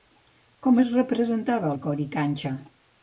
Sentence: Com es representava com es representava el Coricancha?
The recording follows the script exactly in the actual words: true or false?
false